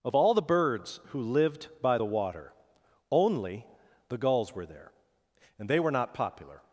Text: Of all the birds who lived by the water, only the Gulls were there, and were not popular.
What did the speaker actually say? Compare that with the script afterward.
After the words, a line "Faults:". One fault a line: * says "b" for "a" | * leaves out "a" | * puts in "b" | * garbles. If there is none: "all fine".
Of all the birds who lived by the water, only the Gulls were there, and they were not popular.
Faults:
* puts in "they"